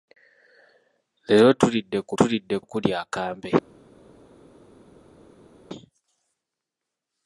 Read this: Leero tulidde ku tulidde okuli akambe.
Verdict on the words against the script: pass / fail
pass